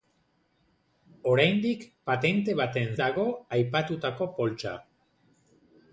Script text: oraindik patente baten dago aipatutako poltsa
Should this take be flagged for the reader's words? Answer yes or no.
no